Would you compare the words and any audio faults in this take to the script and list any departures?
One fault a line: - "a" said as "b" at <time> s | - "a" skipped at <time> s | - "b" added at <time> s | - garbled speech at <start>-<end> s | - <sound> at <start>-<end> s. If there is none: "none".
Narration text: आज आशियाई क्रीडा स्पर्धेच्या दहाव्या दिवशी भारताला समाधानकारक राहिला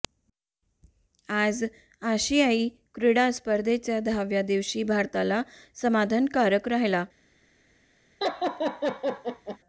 - laugh at 8.2-9.6 s